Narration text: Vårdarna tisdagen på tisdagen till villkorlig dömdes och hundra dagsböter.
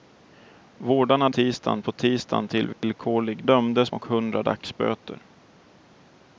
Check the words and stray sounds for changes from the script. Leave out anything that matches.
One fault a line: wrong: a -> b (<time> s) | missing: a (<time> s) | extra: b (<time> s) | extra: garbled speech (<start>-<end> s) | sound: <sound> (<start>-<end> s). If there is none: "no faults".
sound: dropout (2.7-2.8 s)